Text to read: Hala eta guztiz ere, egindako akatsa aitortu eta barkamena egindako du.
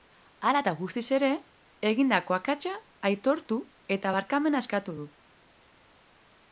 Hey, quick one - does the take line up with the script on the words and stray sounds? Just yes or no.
no